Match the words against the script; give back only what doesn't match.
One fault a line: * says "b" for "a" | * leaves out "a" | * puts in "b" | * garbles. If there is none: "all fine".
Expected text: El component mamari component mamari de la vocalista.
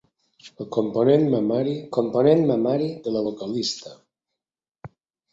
all fine